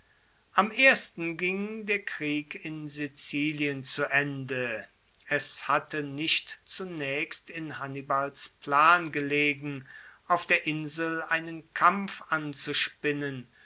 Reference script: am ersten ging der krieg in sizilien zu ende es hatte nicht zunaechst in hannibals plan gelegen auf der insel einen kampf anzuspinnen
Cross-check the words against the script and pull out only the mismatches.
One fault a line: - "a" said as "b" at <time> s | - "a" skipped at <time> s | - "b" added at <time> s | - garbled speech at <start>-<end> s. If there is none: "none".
none